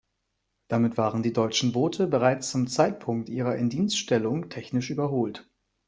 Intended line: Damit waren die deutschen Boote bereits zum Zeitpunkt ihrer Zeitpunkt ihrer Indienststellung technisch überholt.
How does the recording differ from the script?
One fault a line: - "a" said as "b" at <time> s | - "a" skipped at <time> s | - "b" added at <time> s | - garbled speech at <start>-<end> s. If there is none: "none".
- "Zeitpunkt ihrer" skipped at 3.6 s